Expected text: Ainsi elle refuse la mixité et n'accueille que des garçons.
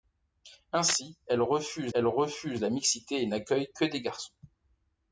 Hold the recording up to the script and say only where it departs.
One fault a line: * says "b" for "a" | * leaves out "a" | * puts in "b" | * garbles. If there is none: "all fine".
* puts in "elle refuse"